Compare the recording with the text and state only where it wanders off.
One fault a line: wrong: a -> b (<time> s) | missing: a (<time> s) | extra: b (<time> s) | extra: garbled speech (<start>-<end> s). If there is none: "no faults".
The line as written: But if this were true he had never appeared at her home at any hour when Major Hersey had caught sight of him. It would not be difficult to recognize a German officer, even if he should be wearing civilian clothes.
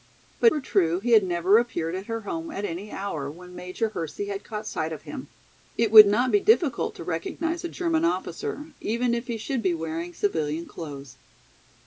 missing: if this (0.5 s)